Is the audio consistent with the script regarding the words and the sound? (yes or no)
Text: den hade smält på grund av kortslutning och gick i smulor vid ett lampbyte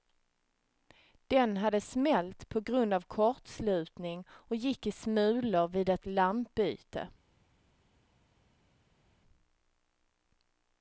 yes